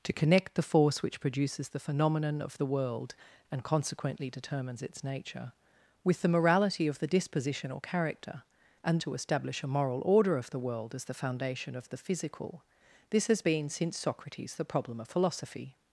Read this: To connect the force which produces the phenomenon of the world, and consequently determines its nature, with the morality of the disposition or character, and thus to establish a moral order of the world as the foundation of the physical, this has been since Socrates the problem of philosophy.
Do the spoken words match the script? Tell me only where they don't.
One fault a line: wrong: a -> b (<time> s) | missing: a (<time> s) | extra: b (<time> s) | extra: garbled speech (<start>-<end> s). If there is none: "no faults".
missing: thus (9.0 s)